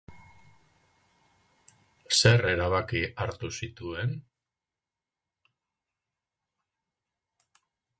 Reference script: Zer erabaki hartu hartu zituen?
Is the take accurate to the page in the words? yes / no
no